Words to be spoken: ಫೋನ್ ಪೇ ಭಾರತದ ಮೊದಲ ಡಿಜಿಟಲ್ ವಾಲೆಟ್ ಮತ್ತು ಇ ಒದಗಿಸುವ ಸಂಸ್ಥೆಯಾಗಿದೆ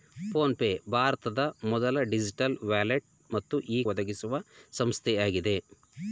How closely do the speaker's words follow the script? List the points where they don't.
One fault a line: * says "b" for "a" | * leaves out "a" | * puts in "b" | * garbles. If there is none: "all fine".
all fine